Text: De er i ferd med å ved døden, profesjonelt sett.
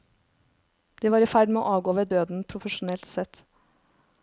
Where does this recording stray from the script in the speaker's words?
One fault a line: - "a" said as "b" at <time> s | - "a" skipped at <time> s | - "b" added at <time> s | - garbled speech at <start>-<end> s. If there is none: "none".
- "er" said as "var" at 1.1 s
- "avgå" added at 1.8 s